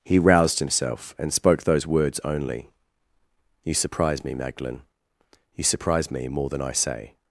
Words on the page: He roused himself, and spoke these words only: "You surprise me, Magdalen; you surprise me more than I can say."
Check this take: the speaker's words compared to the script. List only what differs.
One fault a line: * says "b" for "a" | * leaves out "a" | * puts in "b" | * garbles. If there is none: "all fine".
* says "those" for "these"
* leaves out "can"